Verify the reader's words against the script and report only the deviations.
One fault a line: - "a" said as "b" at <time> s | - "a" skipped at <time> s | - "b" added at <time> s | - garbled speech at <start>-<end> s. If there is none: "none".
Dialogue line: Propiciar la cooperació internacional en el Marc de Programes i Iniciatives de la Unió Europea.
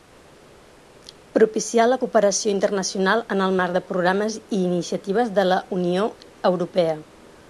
none